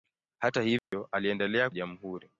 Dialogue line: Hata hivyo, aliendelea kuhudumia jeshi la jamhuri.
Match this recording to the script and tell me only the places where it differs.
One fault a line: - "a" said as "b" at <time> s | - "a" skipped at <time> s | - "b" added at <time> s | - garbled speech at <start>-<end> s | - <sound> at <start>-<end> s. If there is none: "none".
- dropout at 0.8-0.9 s
- "kuhudumia jeshi la" skipped at 1.7 s